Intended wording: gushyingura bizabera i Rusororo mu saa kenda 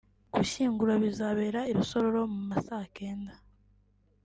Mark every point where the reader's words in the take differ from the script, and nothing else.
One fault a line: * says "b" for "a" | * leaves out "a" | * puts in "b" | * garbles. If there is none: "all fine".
* puts in "ma"